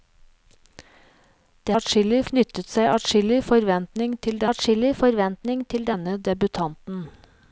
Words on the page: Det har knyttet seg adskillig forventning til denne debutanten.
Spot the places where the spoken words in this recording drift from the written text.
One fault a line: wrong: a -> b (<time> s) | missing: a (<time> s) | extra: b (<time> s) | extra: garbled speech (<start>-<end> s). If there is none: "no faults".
wrong: har -> adskillig (1.8 s)
extra: adskillig forventning til (4.5 s)